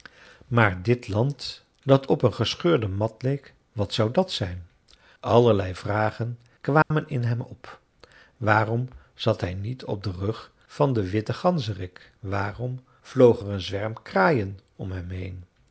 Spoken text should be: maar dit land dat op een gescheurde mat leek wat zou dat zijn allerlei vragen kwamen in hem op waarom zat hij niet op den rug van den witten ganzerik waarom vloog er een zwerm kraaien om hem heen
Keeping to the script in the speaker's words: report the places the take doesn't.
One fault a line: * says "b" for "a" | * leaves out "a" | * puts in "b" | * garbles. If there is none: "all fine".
all fine